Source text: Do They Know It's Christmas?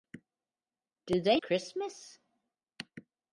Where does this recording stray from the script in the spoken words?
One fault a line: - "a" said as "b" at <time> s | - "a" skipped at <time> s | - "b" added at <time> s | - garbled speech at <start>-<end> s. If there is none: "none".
- "Know It's" skipped at 1.4 s